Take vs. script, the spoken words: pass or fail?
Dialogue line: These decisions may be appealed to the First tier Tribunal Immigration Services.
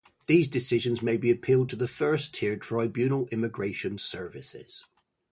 pass